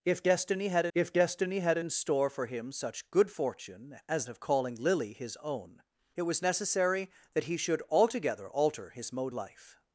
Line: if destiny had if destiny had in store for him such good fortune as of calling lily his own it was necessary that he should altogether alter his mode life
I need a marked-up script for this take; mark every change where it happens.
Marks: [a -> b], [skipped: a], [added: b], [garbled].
if destiny had if destiny had in store for him such good fortune as of calling lily his own it was necessary that he should altogether alter his mode life